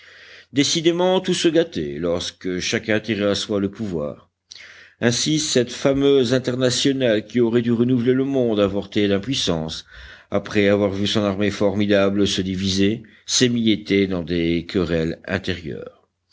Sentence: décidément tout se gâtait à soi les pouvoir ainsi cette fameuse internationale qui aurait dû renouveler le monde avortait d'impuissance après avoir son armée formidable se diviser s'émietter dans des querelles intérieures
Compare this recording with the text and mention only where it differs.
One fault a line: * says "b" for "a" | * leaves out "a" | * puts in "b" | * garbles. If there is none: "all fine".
* puts in "lorsque chacun tirait"
* says "le" for "les"
* puts in "vu"